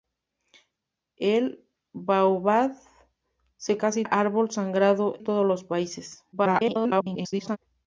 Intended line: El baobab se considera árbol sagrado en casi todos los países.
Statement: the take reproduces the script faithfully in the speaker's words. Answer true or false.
false